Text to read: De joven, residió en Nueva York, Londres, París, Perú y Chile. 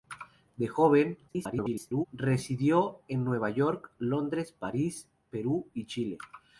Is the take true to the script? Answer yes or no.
no